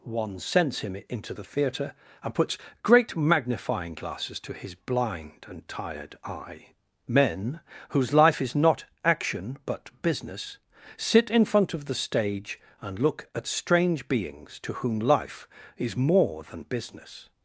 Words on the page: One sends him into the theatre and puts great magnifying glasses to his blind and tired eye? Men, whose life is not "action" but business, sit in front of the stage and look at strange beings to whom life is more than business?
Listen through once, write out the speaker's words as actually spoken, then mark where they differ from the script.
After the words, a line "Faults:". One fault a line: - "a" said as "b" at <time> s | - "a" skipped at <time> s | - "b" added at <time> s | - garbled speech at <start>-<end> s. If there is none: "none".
One sends him into the theatre and puts great magnifying glasses to his blind and tired eye? Men, whose life is not "action" but business, sit in front of the stage and look at strange beings to whom life is more than business?
Faults:
none